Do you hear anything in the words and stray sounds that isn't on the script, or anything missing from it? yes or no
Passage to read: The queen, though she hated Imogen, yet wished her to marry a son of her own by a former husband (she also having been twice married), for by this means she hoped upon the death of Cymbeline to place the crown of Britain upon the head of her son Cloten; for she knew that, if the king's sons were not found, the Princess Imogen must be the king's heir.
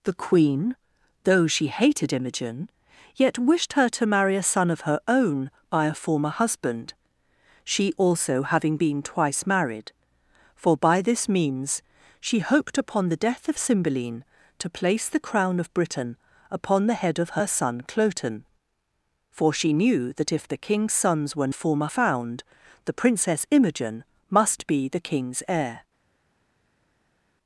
yes